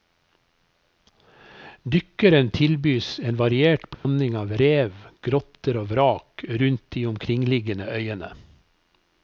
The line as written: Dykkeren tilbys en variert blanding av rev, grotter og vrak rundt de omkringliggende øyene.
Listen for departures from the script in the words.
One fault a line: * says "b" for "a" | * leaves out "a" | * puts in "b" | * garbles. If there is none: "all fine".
all fine